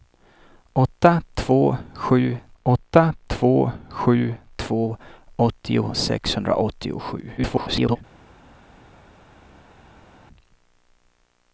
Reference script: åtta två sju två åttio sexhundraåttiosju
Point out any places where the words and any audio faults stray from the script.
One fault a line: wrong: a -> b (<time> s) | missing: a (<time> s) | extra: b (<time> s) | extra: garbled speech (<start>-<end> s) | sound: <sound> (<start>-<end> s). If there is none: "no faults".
extra: åtta två sju (2.6 s)
extra: garbled speech (7.4-8.0 s)